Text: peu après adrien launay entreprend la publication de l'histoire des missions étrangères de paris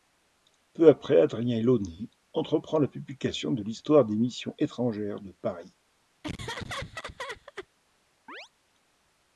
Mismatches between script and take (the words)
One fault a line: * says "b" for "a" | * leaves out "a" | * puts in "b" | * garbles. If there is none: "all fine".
all fine